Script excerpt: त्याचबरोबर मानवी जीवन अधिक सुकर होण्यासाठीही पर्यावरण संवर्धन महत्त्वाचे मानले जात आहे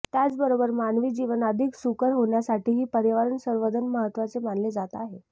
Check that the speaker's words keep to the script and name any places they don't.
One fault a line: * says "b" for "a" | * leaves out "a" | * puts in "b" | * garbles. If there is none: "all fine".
all fine